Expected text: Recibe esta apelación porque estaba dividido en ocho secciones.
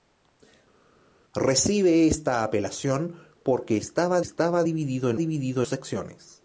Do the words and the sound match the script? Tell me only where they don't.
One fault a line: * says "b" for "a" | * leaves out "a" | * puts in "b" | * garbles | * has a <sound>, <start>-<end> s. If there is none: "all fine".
* puts in "estaba"
* says "dividido" for "ocho"